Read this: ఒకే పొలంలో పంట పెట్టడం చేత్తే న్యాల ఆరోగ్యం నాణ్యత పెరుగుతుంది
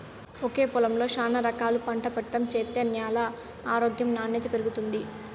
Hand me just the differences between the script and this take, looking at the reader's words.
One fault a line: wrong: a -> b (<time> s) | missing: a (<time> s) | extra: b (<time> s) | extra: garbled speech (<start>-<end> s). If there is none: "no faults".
extra: శానా రకాలు (1.1 s)